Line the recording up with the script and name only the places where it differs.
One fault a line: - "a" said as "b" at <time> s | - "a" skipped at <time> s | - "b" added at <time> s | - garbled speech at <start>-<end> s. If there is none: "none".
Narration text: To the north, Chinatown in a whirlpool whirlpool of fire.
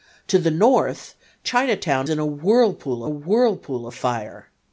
none